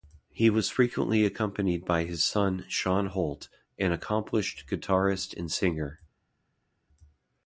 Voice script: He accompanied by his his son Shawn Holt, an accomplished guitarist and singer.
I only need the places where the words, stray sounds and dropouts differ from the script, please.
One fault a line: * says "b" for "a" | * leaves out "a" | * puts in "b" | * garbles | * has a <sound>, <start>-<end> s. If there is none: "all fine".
* puts in "was frequently"
* leaves out "his"